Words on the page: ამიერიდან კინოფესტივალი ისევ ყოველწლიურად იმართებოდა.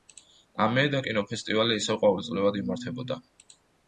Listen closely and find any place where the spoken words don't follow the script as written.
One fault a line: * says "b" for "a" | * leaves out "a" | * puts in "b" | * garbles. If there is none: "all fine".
all fine